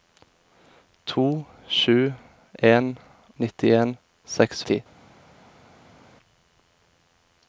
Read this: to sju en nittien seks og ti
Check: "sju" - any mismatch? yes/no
no